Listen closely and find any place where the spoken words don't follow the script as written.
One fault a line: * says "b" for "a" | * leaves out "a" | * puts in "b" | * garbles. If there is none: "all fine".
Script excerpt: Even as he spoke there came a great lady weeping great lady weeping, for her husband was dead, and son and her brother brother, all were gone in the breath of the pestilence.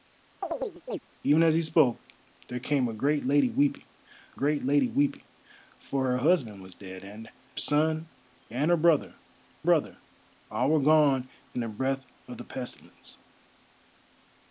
all fine